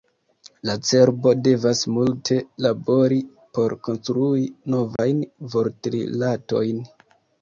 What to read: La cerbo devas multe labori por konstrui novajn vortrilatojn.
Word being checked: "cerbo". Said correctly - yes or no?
yes